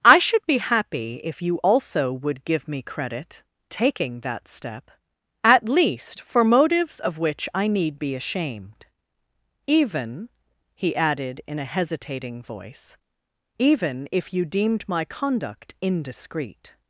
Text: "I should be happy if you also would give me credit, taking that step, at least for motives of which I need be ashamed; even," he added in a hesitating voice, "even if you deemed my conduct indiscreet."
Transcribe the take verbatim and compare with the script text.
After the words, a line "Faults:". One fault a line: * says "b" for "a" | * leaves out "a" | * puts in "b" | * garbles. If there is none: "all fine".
"I should be happy if you also would give me credit, taking that step, at least for motives of which I need be ashamed; even," he added in a hesitating voice, "even if you deemed my conduct indiscreet."
Faults:
all fine